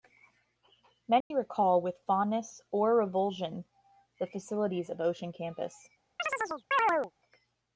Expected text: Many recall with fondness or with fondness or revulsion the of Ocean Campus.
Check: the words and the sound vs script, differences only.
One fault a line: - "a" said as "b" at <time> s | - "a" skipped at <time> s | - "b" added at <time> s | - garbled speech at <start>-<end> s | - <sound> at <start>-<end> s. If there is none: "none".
- dropout at 1.2-1.3 s
- "with fondness or" skipped at 3.0 s
- "facilities" added at 4.2 s
- chirp at 6.2-7.1 s